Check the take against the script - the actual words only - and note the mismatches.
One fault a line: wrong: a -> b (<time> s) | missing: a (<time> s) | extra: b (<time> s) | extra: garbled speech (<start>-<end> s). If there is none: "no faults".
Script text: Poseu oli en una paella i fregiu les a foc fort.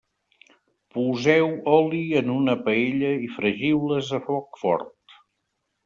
no faults